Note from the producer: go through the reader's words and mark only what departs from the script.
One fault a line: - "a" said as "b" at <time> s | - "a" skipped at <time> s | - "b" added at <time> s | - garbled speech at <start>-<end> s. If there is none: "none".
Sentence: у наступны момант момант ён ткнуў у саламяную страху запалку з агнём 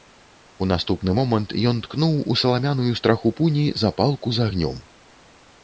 - "момант" skipped at 1.5 s
- "пуні" added at 3.4 s